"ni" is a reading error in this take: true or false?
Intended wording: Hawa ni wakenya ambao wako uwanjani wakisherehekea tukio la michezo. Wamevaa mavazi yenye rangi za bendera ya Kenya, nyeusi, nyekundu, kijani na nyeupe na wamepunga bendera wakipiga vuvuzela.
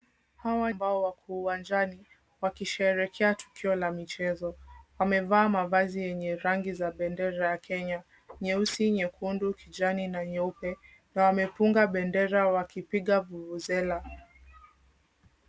true